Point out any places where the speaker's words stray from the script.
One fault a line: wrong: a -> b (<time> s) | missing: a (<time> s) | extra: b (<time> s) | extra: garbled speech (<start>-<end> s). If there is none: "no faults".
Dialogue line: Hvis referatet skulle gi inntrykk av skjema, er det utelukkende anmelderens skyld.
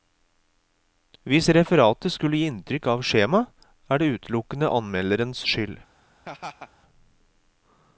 no faults